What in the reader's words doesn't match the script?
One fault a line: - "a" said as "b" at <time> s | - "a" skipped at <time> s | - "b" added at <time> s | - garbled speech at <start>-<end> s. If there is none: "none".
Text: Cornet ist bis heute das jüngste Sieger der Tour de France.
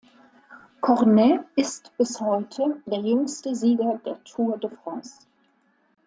- "das" said as "der" at 2.9 s